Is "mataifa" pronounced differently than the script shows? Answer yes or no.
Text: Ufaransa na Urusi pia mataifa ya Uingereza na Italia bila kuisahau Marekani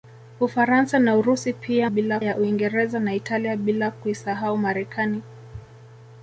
yes